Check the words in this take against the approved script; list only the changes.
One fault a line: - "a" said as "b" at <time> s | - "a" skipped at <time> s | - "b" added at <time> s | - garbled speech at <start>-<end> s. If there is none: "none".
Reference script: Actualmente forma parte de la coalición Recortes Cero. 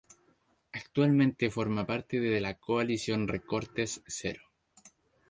none